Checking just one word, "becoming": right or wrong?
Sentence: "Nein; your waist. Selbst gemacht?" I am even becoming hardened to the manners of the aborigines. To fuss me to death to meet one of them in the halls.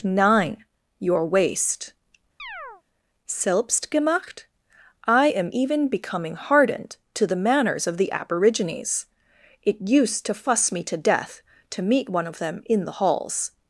right